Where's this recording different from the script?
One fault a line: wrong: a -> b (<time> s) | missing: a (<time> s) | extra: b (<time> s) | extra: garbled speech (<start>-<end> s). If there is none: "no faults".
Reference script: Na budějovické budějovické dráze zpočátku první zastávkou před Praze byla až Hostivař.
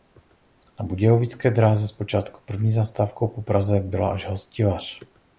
missing: budějovické (1.5 s)
wrong: před -> po (3.3 s)